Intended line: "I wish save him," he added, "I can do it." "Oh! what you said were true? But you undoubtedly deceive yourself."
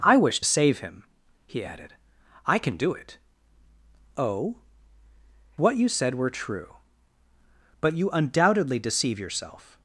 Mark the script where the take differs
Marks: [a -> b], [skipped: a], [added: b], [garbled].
"I wish save him," he added, "I can do it." "Oh! what you said were true? But you undoubtedly deceive yourself."